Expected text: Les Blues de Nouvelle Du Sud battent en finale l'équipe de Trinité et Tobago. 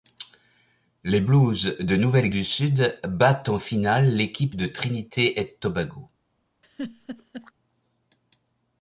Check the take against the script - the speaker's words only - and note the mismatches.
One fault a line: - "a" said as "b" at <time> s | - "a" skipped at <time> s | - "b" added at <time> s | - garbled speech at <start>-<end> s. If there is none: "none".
none